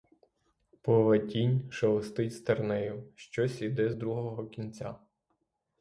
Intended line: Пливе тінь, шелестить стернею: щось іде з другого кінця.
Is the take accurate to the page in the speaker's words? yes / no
yes